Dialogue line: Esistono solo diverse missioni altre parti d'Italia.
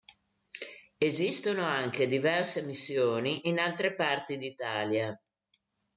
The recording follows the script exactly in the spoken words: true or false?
false